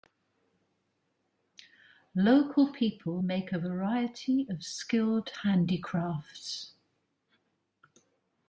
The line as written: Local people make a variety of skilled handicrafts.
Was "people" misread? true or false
false